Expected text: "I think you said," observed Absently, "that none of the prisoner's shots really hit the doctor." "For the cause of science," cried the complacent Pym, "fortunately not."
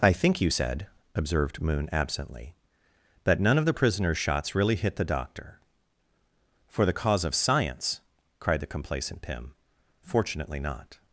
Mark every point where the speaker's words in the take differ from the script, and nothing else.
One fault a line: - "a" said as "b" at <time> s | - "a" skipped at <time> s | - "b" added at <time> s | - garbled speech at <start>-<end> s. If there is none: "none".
- "Moon" added at 1.6 s